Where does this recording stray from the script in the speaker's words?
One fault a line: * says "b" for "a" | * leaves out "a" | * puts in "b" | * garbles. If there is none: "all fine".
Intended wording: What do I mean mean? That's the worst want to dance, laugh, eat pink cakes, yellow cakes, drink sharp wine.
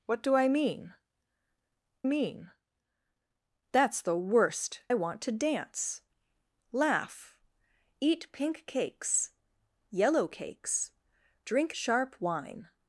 all fine